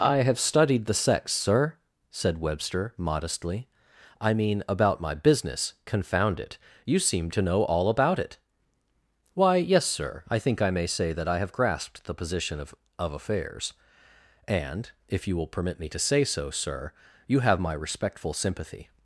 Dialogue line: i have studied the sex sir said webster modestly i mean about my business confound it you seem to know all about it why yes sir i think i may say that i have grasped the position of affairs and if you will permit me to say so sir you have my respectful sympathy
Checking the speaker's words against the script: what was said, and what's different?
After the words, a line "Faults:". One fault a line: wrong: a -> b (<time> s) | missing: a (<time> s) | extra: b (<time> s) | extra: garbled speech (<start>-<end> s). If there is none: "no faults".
i have studied the sex sir said webster modestly i mean about my business confound it you seem to know all about it why yes sir i think i may say that i have grasped the position of of affairs and if you will permit me to say so sir you have my respectful sympathy
Faults:
extra: of (13.0 s)